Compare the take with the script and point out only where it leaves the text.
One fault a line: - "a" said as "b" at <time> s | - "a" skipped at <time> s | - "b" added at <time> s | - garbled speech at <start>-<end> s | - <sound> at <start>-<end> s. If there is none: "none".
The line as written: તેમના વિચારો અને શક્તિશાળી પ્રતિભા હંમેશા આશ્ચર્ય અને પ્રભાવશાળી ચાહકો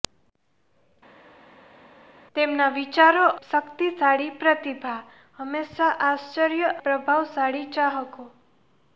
- "અને" skipped at 3.2 s
- "અને" skipped at 6.8 s